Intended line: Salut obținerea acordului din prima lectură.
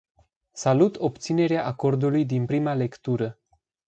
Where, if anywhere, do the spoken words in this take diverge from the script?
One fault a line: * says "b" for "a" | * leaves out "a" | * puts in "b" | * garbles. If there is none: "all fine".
all fine